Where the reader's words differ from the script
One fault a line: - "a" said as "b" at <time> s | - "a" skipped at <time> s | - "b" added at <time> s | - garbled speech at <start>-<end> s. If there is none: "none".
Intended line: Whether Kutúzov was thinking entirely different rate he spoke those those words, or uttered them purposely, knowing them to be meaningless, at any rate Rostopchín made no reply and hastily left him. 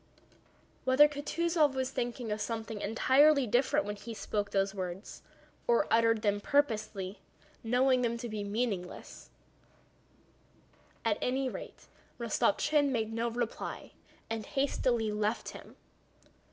- "of something" added at 2.3 s
- "rate" said as "when" at 3.9 s
- "those" skipped at 4.7 s